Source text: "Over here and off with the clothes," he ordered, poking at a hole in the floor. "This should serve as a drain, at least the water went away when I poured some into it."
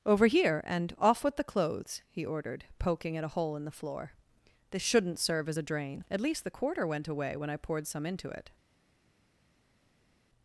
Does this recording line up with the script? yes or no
no